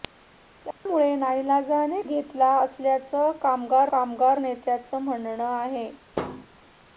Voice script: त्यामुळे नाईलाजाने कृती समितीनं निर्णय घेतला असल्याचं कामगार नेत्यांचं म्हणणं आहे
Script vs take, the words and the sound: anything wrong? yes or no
yes